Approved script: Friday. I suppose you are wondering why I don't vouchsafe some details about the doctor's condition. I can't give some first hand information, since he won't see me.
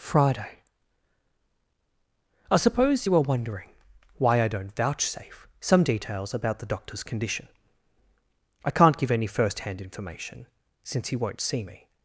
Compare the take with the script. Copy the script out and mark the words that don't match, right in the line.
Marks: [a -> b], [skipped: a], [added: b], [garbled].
Friday. I suppose you are wondering why I don't vouchsafe some details about the doctor's condition. I can't give [some -> any] first hand information, since he won't see me.